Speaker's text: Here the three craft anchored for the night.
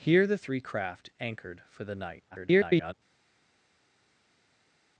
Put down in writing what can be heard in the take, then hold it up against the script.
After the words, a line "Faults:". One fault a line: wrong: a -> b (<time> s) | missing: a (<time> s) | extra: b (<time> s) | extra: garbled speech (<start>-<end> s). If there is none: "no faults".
Here the three craft anchored for the night. [garbled]
Faults:
extra: garbled speech (2.3-2.9 s)